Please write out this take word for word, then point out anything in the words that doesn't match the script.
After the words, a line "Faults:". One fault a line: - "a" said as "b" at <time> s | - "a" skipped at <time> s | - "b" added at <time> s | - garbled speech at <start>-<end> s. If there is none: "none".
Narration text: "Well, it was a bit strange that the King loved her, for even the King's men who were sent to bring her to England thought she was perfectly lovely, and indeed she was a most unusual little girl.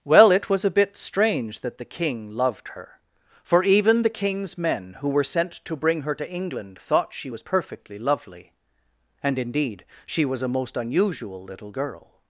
"Well, it was a bit strange that the King loved her, for even the King's men who were sent to bring her to England thought she was perfectly lovely, and indeed she was a most unusual little girl.
Faults:
none